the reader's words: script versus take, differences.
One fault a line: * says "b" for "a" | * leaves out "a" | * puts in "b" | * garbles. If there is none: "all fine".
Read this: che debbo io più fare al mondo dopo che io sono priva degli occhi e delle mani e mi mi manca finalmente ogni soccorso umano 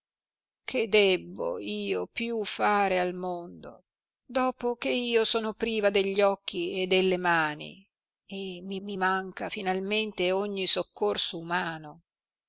all fine